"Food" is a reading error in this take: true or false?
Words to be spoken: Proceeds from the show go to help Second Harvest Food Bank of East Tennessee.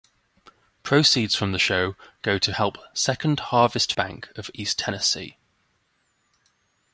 true